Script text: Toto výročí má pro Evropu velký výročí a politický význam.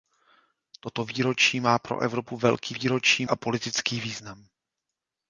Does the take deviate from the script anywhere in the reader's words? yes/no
no